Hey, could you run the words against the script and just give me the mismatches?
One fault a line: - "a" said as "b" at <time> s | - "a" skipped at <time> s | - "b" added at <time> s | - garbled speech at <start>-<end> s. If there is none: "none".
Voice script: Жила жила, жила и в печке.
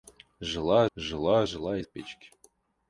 none